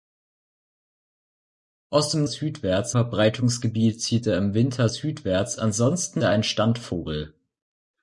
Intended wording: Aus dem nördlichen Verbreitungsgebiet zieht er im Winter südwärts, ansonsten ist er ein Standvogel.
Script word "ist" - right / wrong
wrong